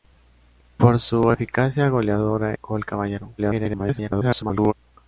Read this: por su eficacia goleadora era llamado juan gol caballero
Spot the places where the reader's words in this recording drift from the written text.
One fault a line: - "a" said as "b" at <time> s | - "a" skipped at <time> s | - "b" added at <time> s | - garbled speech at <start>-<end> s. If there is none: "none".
- "era llamado juan" skipped at 2.5 s
- garbled speech at 3.4-4.7 s